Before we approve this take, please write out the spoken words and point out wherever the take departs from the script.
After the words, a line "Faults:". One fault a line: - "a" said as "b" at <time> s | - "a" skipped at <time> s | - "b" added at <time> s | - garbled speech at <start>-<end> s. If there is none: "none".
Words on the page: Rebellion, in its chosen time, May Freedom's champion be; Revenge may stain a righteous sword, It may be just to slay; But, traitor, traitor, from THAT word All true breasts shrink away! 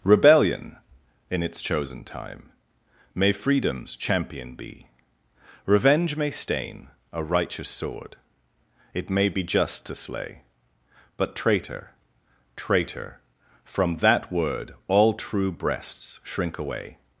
Rebellion, in its chosen time, May Freedom's champion be; Revenge may stain a righteous sword, It may be just to slay; But, traitor, traitor, from THAT word All true breasts shrink away!
Faults:
none